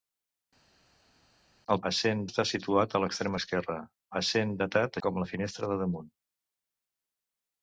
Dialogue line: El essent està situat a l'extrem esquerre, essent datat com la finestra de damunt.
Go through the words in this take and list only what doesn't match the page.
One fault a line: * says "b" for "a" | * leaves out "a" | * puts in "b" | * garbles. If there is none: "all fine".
all fine